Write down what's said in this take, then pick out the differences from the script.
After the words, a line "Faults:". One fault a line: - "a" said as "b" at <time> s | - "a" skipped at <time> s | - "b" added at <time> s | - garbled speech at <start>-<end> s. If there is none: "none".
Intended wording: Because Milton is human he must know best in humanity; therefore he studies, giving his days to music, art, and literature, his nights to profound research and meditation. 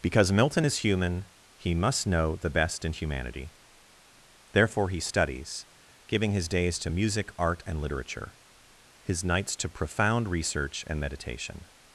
Because Milton is human he must know the best in humanity; therefore he studies, giving his days to music, art, and literature, his nights to profound research and meditation.
Faults:
- "the" added at 2.4 s